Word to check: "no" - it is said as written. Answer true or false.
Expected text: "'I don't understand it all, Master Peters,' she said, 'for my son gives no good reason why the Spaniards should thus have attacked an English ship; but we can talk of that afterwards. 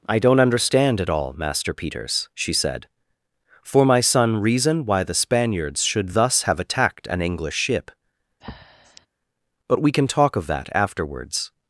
false